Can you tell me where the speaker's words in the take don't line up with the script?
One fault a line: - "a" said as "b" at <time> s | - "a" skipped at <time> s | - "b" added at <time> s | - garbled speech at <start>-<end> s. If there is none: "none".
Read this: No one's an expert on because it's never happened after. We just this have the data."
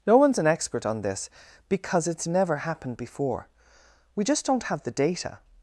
- "this" added at 1.0 s
- "after" said as "before" at 3.0 s
- "this" said as "don't" at 4.4 s